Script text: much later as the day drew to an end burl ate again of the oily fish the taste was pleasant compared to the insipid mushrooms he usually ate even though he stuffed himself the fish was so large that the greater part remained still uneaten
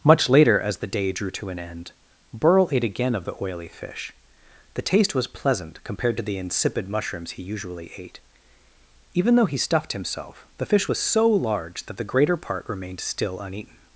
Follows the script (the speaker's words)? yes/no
yes